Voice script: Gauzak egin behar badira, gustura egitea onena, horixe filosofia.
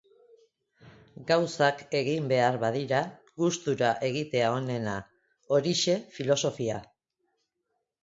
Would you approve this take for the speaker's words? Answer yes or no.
yes